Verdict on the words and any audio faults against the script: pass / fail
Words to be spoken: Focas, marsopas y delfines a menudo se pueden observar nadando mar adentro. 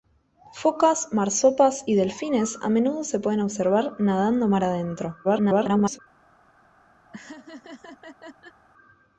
fail